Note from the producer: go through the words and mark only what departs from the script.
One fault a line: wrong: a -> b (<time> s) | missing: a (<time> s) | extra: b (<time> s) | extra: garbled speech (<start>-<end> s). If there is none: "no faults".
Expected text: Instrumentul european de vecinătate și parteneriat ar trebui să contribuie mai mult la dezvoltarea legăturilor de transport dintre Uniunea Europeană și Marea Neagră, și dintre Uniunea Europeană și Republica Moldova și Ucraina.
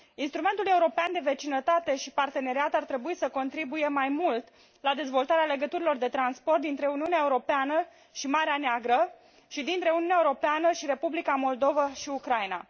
no faults